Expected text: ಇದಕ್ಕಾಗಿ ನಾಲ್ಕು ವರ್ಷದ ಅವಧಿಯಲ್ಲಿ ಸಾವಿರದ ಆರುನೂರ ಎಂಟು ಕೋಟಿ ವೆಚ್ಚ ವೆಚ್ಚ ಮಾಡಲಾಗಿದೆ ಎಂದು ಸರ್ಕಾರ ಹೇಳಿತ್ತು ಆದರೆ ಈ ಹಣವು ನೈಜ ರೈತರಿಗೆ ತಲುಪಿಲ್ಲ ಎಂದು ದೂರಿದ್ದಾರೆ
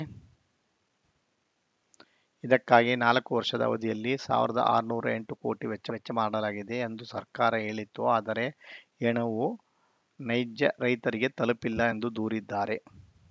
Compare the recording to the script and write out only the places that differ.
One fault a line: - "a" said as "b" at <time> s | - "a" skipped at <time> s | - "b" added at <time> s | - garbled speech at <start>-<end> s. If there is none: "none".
none